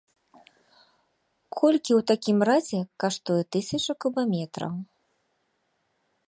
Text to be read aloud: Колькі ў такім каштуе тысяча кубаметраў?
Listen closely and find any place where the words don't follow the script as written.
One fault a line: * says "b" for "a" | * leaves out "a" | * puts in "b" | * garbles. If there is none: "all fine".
* puts in "разе"